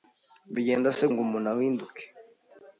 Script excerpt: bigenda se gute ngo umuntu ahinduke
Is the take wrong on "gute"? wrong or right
wrong